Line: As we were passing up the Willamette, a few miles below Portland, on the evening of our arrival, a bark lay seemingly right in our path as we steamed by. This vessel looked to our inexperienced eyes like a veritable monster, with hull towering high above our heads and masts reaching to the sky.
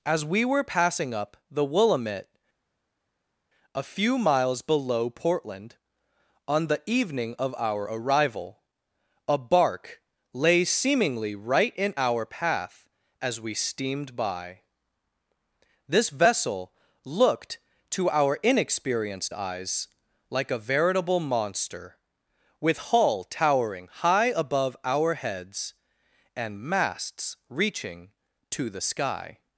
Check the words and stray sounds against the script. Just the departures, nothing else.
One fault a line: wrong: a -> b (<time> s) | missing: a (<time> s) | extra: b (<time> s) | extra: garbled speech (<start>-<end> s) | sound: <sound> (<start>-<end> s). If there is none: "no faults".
no faults